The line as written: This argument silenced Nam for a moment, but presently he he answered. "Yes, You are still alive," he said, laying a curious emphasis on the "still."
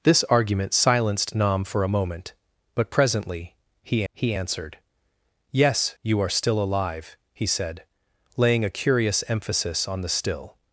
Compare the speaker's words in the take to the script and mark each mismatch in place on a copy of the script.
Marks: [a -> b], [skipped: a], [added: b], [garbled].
This argument silenced Nam for a moment, but presently he he answered. "Yes, You are still alive," he said, laying a curious emphasis on the "still."